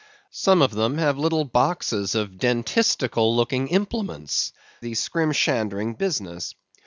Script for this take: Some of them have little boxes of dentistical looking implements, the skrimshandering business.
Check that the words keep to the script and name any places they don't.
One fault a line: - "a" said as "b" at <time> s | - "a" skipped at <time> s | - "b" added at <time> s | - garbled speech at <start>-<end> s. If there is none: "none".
none